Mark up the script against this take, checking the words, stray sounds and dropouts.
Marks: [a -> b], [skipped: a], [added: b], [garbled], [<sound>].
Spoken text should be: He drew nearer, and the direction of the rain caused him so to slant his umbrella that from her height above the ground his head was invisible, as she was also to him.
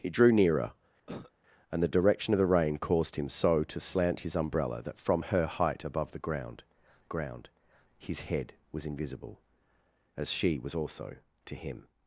He drew nearer, [cough] and the direction of the rain caused him so to slant his umbrella that from her height above the ground [added: ground] his head was invisible, as she was also to him.